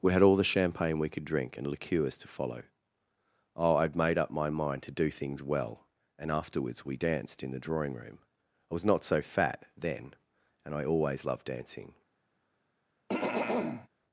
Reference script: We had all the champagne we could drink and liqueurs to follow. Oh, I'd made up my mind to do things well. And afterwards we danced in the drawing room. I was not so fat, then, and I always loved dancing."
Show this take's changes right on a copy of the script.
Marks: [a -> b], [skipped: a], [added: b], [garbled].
We had all the champagne we could drink and liqueurs to follow. Oh, I'd made up my mind to do things well. And afterwards we danced in the drawing room. I was not so fat, then, and I always loved dancing."